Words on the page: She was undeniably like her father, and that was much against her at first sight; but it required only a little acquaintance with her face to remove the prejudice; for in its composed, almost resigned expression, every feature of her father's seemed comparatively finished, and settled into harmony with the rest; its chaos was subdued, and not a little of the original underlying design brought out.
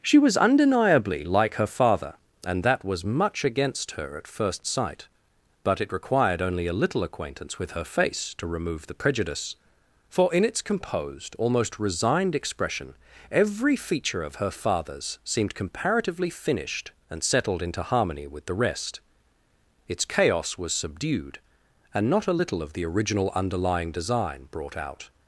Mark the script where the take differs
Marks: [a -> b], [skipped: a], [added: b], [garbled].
She was undeniably like her father, and that was much against her at first sight; but it required only a little acquaintance with her face to remove the prejudice; for in its composed, almost resigned expression, every feature of her father's seemed comparatively finished, and settled into harmony with the rest; its chaos was subdued, and not a little of the original underlying design brought out.